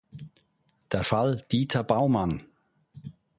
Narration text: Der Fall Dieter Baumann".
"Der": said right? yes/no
yes